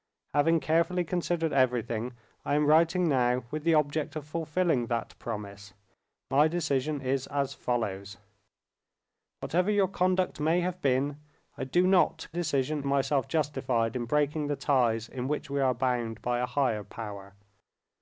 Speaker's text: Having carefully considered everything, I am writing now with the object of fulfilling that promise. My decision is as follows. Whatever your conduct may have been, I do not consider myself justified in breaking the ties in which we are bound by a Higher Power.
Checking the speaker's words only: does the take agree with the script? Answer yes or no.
no